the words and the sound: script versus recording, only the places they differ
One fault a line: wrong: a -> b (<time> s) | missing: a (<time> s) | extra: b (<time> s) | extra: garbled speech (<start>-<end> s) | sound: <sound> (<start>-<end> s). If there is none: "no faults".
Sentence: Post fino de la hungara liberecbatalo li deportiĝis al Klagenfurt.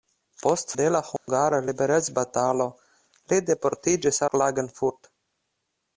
missing: fino (0.7 s)
sound: dropout (1.2-1.3 s)
missing: al (4.2 s)